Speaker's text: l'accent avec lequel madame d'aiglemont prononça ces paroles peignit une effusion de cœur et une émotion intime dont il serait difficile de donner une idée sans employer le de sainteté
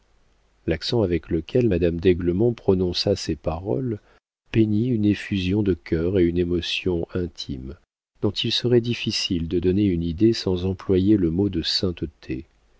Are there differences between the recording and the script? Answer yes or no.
yes